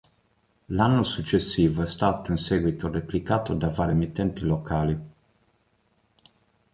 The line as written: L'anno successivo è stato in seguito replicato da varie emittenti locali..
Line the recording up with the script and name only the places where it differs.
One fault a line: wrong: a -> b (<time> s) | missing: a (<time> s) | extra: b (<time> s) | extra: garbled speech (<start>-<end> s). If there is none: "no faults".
no faults